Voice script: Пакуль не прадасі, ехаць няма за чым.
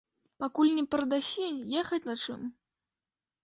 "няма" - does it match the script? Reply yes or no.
no